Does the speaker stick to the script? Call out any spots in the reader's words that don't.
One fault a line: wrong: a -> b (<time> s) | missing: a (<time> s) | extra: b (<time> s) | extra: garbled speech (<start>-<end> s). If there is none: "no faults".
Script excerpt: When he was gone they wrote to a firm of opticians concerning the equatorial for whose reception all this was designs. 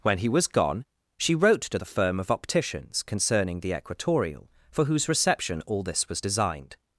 wrong: they -> she (1.2 s)
wrong: a -> the (1.7 s)
wrong: designs -> designed (6.2 s)